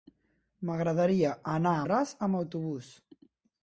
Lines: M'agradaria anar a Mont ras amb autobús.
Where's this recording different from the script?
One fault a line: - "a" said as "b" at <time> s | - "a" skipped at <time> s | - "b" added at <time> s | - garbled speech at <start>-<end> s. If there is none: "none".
- "Mont" skipped at 1.9 s